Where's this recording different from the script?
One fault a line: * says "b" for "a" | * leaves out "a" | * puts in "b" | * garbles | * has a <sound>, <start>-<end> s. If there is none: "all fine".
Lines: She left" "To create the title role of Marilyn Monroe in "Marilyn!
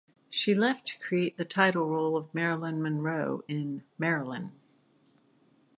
all fine